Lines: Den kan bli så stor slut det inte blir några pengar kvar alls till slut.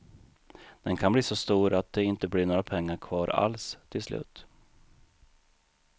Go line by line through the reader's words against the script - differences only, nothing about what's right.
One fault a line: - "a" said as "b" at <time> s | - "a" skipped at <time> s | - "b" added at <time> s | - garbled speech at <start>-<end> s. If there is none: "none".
- "slut" said as "att" at 1.7 s